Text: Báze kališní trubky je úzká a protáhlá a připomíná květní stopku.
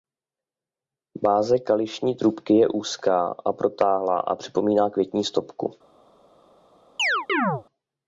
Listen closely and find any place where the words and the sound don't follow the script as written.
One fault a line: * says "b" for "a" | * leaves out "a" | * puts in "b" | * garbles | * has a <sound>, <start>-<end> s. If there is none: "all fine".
* has a chirp, 7.0-7.6 s